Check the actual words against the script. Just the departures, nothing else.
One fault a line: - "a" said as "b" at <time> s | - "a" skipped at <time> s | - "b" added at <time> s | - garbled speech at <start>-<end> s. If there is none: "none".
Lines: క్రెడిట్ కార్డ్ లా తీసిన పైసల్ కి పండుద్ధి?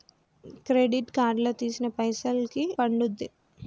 none